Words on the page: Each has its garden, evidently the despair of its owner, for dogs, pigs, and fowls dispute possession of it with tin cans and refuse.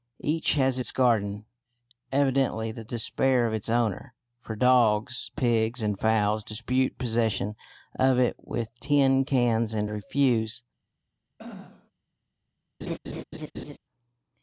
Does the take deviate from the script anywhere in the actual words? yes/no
no